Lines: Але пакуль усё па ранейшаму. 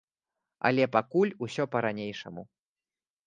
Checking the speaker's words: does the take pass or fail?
pass